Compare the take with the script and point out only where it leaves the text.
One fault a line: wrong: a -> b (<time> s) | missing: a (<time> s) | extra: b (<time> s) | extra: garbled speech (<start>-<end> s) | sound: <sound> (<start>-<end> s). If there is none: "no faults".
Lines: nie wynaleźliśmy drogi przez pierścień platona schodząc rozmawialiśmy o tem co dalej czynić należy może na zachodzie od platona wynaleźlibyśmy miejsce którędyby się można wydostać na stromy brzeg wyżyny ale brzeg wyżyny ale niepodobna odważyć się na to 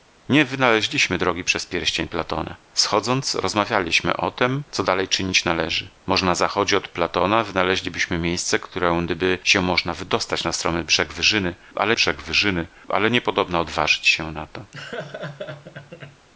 sound: laugh (14.7-16.3 s)